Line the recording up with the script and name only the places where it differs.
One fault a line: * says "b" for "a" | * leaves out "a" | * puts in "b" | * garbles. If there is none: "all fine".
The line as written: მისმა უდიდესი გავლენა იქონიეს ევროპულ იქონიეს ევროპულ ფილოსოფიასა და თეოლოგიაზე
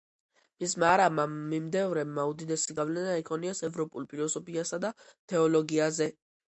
* puts in "არაბმა მიმდევრებმა"
* leaves out "იქონიეს ევროპულ"